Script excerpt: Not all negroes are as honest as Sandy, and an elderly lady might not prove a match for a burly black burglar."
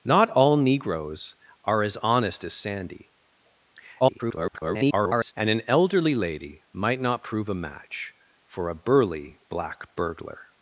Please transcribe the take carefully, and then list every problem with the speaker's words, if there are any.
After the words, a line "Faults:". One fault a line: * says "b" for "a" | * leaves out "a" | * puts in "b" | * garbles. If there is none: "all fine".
Not all negroes are as honest as Sandy, [garbled] and an elderly lady might not prove a match for a burly black burglar."
Faults:
* garbles